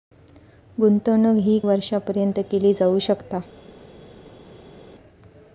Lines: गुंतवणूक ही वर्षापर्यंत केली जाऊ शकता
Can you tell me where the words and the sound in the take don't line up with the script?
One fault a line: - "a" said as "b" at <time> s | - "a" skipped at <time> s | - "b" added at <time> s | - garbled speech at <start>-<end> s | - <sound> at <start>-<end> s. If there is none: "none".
none